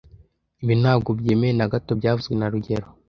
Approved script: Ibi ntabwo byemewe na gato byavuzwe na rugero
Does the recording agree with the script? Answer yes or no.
yes